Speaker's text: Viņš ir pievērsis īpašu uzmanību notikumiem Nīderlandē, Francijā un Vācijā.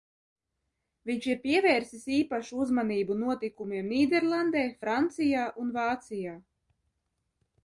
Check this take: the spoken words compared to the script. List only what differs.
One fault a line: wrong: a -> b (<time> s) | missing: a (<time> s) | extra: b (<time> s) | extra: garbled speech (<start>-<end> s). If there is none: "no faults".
no faults